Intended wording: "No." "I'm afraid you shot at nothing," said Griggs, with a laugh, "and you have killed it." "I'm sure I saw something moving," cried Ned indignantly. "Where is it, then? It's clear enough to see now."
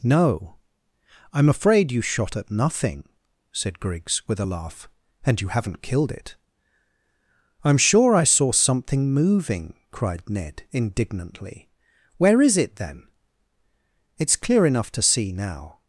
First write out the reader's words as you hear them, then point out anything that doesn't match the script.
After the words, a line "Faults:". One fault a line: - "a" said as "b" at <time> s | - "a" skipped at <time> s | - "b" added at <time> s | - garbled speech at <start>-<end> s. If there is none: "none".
"No." "I'm afraid you shot at nothing," said Griggs, with a laugh, "and you haven't killed it." "I'm sure I saw something moving," cried Ned indignantly. "Where is it, then? It's clear enough to see now."
Faults:
- "have" said as "haven't" at 5.5 s